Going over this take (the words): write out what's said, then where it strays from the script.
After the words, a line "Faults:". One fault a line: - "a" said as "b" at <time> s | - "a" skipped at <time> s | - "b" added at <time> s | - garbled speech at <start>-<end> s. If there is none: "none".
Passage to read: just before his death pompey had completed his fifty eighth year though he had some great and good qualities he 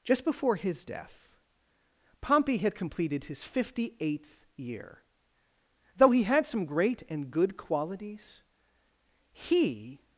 just before his death pompey had completed his fifty eighth year though he had some great and good qualities he
Faults:
none